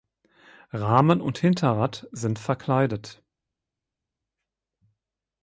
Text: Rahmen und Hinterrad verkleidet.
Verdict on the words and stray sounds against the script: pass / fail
fail